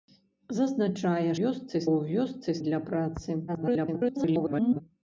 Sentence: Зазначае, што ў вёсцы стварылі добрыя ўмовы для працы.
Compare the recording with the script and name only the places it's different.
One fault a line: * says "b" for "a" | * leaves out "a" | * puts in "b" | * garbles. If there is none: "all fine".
* says "вёсцы" for "што"
* leaves out "стварылі добрыя ўмовы"
* garbles